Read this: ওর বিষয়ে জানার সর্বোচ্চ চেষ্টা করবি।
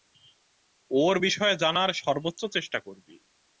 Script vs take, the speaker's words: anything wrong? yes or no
no